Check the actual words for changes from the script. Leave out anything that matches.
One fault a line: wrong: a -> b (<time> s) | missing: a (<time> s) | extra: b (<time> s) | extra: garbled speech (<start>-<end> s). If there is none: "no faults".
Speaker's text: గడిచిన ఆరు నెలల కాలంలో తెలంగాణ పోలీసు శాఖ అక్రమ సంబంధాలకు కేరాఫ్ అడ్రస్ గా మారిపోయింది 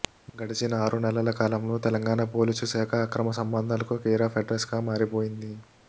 no faults